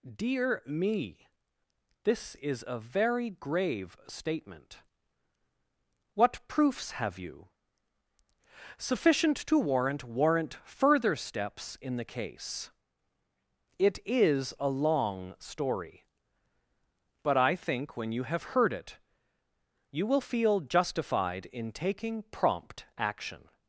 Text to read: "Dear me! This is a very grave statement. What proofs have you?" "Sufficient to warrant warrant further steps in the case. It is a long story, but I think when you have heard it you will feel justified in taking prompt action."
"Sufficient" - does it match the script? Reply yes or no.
yes